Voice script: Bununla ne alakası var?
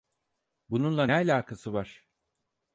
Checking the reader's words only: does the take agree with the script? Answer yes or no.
yes